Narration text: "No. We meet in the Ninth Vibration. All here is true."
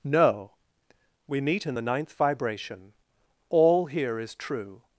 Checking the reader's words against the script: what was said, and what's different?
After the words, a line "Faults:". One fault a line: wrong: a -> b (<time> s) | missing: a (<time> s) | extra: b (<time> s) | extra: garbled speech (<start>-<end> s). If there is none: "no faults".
"No. We meet in the Ninth Vibration. All here is true."
Faults:
no faults